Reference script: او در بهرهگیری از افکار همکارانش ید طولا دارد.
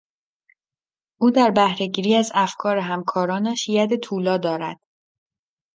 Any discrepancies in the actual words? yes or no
no